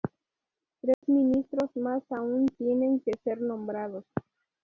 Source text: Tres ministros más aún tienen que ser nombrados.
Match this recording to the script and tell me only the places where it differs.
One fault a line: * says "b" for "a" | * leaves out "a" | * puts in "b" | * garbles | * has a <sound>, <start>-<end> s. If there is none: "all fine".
* has a dropout, 0.9-1.0 s